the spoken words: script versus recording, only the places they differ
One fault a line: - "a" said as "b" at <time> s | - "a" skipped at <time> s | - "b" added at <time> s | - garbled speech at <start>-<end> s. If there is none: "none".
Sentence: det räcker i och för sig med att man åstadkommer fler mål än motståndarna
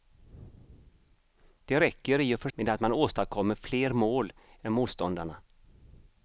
- "sig" skipped at 2.5 s